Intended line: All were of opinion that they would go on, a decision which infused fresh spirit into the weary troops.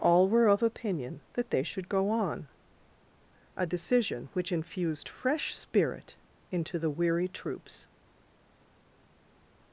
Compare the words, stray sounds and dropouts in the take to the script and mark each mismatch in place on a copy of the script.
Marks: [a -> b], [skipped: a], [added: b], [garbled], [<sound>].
All were of opinion that they [would -> should] go on, a decision which infused fresh spirit into the weary troops.